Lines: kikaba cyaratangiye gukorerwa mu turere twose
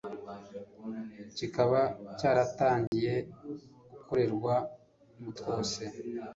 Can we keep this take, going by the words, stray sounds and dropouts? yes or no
no